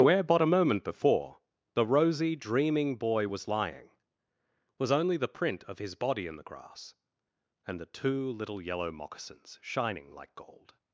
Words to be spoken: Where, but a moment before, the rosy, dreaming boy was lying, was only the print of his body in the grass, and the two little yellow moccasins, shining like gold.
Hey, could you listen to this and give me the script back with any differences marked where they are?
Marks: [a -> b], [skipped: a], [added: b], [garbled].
Where, but a moment before, the rosy, dreaming boy was lying, was only the print of his body in the grass, and the two little yellow moccasins, shining like gold.